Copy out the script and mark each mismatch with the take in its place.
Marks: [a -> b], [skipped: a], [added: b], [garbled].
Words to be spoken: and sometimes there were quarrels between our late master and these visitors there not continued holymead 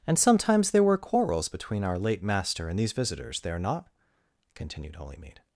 and sometimes there were quarrels between our late master and these visitors there not continued holymead